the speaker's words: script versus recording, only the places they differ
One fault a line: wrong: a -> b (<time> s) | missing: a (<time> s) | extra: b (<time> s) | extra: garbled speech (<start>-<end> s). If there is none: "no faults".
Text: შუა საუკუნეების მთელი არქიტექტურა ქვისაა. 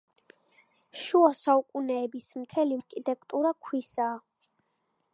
no faults